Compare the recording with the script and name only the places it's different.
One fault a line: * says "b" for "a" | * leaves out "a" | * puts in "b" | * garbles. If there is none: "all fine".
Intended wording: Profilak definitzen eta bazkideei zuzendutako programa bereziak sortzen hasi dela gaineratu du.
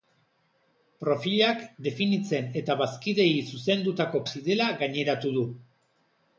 * leaves out "programa bereziak sortzen"